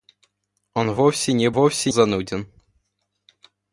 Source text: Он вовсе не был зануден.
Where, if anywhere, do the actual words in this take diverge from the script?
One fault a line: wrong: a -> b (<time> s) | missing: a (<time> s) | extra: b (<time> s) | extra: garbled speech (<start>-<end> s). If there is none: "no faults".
wrong: был -> вовсе (1.5 s)